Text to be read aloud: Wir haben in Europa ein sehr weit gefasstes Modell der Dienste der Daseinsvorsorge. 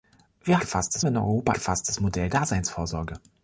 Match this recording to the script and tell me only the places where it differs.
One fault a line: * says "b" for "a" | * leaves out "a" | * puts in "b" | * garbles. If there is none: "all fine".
* says "gefasstes" for "haben"
* leaves out "ein sehr weit"
* leaves out "der Dienste der"